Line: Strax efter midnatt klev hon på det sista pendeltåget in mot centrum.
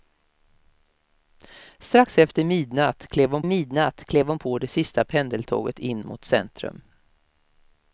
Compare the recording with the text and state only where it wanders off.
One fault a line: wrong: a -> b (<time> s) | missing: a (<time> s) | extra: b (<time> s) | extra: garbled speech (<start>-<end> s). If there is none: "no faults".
extra: midnatt klev hon (3.4 s)